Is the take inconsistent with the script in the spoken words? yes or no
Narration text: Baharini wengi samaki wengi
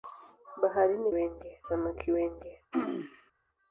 no